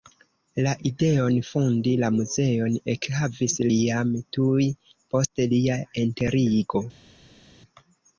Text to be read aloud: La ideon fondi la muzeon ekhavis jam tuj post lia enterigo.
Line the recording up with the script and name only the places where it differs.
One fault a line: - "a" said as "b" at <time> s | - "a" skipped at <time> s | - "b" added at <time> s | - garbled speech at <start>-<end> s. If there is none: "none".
none